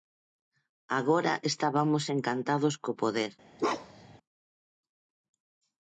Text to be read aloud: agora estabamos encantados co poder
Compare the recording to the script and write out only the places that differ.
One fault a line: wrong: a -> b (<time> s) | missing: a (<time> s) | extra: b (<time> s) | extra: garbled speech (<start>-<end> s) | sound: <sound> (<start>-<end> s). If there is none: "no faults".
sound: bark (3.6-4.2 s)